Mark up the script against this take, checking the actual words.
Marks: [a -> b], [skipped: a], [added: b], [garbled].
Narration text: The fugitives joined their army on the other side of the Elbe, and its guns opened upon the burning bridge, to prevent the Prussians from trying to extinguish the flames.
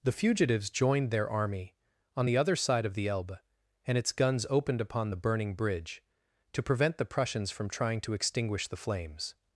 The fugitives joined their army on the other side of the Elbe, and its guns opened upon the burning bridge, to prevent the Prussians from trying to extinguish the flames.